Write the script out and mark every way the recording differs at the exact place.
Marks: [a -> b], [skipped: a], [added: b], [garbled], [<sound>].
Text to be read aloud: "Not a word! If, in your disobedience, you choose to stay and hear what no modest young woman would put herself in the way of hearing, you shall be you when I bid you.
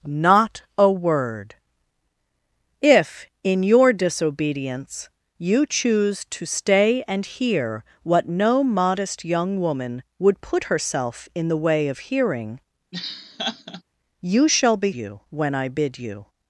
"Not a word! If, in your disobedience, you choose to stay and hear what no modest young woman would put herself in the way of hearing, [laugh] you shall be you when I bid you.